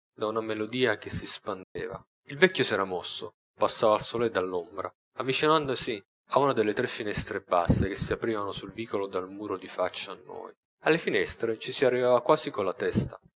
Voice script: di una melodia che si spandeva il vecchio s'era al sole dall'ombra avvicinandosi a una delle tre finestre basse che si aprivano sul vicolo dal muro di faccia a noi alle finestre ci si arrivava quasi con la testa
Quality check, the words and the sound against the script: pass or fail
fail